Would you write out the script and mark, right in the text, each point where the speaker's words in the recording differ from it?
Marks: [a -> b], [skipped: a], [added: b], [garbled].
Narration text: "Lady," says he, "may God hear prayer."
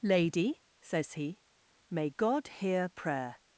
"Lady," says he, "may God hear prayer."